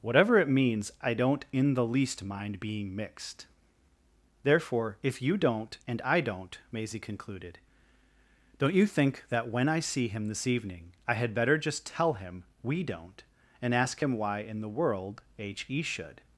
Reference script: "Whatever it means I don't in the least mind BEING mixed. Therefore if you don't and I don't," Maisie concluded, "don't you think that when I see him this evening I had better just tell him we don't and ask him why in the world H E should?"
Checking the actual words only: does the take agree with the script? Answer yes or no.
yes